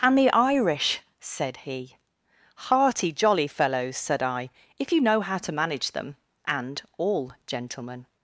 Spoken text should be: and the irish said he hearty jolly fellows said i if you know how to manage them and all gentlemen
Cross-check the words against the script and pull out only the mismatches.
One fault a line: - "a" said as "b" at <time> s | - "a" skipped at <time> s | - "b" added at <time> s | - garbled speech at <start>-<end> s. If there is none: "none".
none